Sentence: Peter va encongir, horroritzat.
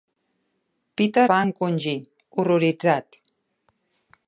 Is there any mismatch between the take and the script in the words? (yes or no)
no